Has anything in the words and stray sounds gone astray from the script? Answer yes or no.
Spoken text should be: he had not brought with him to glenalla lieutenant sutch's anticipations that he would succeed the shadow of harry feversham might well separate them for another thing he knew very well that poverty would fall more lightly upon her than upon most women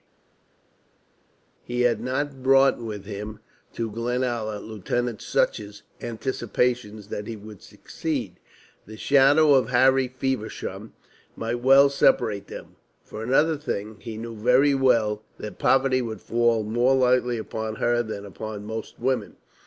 no